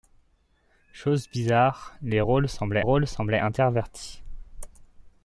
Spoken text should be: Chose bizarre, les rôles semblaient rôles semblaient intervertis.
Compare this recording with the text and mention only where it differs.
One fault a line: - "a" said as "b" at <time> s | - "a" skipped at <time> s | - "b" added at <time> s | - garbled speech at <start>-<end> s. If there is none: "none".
none